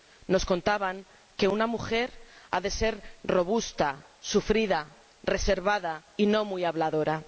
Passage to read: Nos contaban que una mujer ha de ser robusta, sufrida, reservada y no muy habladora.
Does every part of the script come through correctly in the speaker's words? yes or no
yes